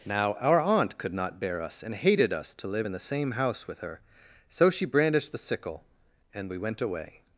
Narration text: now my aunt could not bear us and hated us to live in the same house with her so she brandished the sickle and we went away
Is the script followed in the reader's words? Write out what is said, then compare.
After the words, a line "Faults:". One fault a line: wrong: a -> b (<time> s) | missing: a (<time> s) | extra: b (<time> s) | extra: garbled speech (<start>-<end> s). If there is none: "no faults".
now our aunt could not bear us and hated us to live in the same house with her so she brandished the sickle and we went away
Faults:
wrong: my -> our (0.4 s)